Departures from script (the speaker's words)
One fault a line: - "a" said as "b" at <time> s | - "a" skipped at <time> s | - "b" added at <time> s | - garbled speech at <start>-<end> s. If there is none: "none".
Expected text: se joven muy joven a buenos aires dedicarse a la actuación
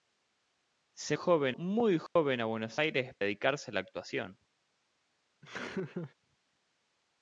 none